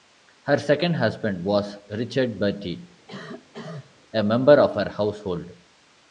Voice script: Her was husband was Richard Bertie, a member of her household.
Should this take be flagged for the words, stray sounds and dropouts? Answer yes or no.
yes